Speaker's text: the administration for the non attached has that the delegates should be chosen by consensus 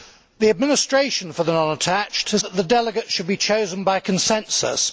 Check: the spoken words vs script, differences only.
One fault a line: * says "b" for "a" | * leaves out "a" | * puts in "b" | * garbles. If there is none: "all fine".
all fine